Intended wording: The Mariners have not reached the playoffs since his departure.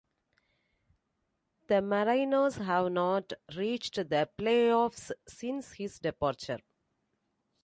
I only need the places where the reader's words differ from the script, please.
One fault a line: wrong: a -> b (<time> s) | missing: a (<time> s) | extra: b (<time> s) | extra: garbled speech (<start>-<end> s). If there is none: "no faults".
no faults